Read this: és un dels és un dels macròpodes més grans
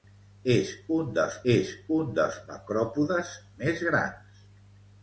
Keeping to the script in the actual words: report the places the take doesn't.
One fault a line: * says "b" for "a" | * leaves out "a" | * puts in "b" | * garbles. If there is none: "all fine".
all fine